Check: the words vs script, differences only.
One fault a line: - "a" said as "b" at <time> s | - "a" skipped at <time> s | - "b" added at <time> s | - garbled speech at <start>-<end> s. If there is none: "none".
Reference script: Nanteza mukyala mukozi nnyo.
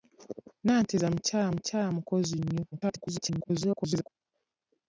- "mukyala" added at 1.5 s
- garbled speech at 2.7-4.1 s